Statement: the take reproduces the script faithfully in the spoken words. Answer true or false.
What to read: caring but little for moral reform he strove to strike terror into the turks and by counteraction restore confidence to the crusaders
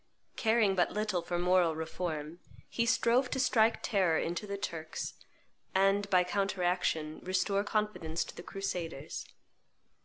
true